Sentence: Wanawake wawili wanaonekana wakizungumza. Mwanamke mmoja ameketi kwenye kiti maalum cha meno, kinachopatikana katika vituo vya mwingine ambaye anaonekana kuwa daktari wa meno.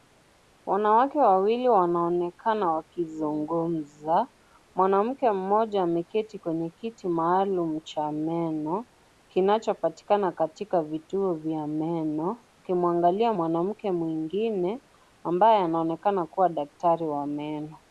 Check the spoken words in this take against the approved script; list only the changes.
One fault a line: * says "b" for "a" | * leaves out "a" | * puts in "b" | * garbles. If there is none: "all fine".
* puts in "meno akimwangalia mwanamke"